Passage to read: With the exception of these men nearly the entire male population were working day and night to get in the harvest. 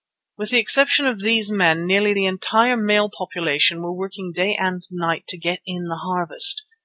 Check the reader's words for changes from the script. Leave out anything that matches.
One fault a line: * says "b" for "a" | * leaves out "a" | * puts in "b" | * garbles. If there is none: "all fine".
all fine